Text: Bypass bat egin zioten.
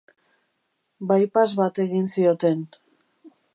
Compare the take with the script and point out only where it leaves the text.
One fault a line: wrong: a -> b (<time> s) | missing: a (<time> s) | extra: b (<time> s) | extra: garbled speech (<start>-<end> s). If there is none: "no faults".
no faults